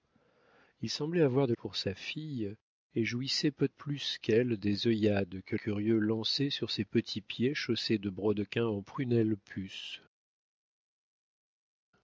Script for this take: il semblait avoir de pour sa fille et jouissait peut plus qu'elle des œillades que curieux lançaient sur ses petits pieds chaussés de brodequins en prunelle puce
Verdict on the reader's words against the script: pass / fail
pass